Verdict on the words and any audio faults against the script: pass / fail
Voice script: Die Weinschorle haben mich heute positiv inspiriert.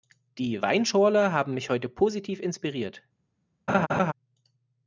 fail